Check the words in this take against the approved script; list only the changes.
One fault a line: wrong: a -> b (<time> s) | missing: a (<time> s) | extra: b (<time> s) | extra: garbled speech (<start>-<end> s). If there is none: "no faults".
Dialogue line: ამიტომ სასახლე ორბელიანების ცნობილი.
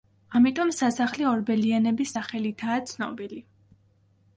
extra: სახელითაა (2.2 s)